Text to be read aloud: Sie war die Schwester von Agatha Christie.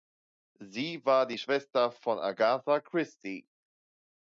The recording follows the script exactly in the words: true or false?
true